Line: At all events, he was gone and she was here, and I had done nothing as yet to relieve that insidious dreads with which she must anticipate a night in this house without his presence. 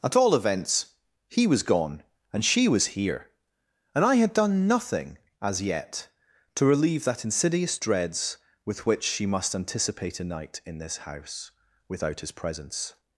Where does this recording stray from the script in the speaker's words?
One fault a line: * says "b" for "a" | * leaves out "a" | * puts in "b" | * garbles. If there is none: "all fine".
all fine